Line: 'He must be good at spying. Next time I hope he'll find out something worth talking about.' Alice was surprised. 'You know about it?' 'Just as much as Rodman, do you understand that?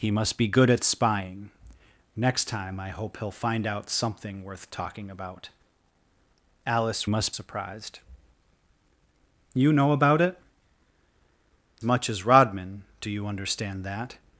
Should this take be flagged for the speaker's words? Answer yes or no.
yes